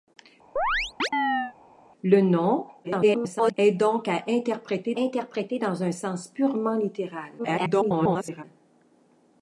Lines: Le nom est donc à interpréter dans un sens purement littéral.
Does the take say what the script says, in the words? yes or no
no